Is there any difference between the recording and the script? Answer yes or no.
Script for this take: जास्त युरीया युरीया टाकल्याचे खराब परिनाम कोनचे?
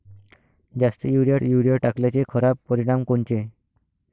no